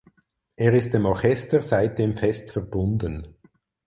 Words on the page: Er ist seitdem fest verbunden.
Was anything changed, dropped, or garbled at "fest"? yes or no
no